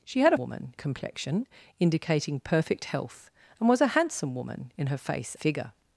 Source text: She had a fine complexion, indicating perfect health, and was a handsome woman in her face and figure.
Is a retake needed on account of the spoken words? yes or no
yes